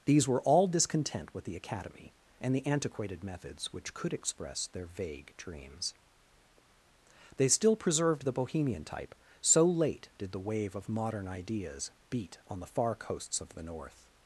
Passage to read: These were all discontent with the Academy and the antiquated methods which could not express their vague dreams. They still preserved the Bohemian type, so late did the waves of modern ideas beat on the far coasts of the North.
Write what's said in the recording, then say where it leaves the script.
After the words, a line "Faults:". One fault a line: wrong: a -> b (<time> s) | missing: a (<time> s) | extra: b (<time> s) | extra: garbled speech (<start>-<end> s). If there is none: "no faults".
These were all discontent with the Academy and the antiquated methods which could express their vague dreams. They still preserved the Bohemian type, so late did the wave of modern ideas beat on the far coasts of the North.
Faults:
missing: not (4.1 s)
wrong: waves -> wave (10.4 s)